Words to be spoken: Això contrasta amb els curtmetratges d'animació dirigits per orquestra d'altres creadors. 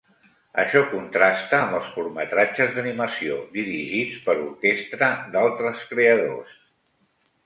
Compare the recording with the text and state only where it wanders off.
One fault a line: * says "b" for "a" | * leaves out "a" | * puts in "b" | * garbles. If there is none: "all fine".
all fine